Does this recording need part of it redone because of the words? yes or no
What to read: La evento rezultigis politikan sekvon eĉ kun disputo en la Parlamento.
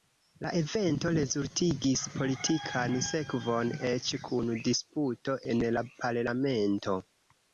no